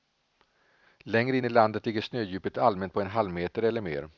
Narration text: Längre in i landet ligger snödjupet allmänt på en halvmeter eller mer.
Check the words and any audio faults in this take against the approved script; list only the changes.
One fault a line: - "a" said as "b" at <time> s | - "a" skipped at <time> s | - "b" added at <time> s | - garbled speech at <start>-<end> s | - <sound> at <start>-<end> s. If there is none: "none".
none